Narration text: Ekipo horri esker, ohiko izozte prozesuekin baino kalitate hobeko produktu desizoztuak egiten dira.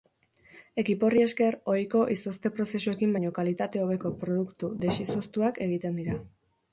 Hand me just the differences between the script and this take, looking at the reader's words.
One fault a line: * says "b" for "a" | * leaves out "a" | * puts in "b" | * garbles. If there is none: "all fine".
all fine